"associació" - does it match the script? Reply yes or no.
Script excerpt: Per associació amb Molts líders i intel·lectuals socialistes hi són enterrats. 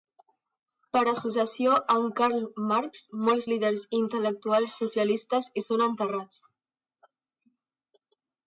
yes